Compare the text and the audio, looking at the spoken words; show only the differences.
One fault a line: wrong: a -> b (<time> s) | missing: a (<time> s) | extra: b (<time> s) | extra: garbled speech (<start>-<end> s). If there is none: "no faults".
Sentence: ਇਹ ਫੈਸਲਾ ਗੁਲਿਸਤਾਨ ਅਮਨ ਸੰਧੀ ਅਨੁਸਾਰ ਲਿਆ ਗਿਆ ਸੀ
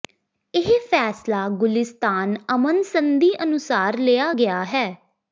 wrong: ਸੀ -> ਹੈ (4.7 s)